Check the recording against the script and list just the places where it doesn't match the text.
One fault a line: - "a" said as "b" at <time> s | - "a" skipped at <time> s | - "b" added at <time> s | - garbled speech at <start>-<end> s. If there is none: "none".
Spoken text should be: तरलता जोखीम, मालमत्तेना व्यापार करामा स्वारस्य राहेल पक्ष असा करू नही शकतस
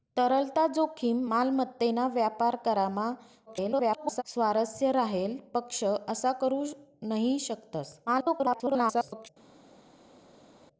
- garbled speech at 3.5-4.2 s
- garbled speech at 8.1-9.3 s